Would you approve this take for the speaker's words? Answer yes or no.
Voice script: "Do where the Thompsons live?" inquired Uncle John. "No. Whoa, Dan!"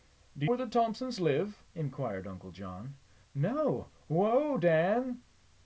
yes